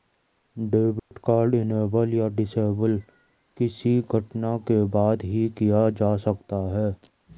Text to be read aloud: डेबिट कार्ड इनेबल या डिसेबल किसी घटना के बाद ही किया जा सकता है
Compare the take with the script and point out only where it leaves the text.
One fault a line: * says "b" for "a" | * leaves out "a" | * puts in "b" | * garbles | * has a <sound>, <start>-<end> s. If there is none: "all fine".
* has a dropout, 1.0-1.1 s